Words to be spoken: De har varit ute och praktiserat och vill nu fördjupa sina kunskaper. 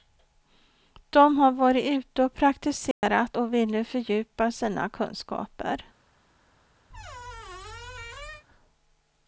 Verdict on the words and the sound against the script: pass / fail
fail